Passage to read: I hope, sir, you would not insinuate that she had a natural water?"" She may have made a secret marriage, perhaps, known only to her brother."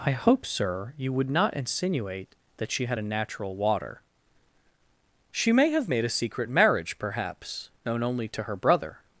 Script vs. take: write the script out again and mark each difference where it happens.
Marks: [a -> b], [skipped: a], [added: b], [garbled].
I hope, sir, you would not insinuate that she had a natural water?"" She may have made a secret marriage, perhaps, known only to her brother."